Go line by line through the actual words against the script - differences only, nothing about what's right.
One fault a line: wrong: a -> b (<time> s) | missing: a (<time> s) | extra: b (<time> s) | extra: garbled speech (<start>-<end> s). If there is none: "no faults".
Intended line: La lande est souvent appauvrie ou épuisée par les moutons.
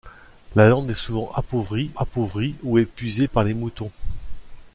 extra: appauvrie (2.0 s)